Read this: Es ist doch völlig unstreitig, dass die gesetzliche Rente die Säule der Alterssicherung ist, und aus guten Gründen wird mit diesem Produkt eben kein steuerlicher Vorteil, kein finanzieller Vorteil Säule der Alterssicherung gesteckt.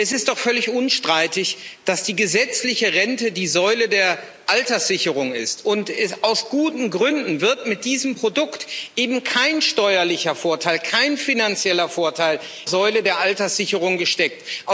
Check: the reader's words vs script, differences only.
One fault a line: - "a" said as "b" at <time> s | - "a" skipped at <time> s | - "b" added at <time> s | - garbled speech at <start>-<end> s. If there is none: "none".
none